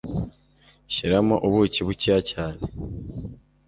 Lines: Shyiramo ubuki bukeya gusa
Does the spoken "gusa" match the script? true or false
false